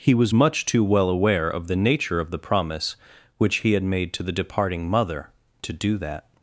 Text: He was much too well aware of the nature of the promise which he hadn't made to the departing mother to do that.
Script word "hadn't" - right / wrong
wrong